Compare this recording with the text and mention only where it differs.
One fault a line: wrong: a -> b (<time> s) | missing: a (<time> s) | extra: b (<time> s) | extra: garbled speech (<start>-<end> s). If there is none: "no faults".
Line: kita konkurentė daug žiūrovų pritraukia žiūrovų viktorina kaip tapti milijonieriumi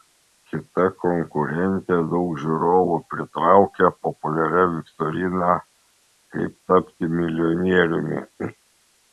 wrong: žiūrovų -> populiaria (4.1 s)